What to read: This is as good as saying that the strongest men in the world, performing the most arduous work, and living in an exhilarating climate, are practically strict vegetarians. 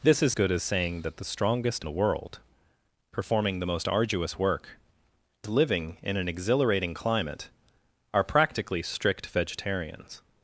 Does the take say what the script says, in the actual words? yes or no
no